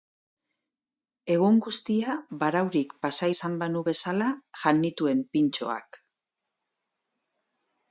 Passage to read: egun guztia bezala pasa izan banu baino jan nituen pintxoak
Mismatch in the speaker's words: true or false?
true